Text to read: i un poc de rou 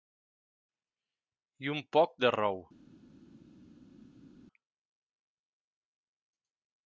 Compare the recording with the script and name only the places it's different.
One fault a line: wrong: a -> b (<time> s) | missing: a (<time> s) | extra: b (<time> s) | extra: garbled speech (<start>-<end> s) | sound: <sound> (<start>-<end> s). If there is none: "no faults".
no faults